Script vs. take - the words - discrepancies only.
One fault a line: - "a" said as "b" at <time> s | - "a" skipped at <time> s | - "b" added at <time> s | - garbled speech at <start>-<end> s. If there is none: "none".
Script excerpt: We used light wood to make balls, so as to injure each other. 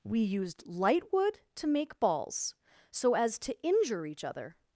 none